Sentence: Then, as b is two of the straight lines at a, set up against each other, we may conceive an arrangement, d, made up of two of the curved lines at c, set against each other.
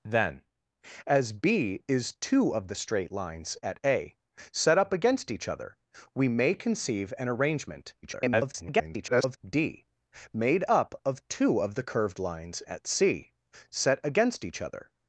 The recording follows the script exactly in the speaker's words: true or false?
false